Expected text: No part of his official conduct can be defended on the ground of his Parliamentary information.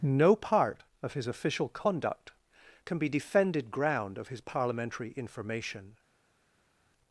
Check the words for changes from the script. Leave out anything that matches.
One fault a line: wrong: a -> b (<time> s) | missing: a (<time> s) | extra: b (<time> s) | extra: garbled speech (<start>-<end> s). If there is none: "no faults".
missing: on the (3.7 s)